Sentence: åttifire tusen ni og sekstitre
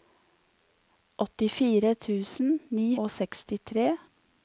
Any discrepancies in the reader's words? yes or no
no